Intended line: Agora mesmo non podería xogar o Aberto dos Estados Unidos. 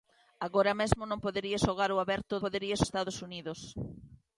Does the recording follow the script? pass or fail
fail